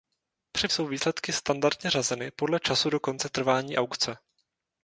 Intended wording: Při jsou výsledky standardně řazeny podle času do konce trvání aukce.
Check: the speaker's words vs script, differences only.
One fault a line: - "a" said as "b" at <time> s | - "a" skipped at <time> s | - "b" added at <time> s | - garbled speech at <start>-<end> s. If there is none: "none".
none